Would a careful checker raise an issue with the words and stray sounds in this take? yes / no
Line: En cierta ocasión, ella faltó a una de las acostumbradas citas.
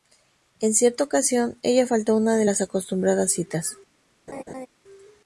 yes